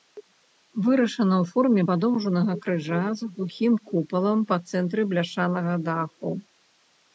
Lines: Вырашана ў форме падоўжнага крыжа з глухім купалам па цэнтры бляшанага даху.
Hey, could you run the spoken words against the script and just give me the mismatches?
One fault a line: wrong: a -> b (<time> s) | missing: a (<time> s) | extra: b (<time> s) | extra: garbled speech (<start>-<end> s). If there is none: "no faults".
no faults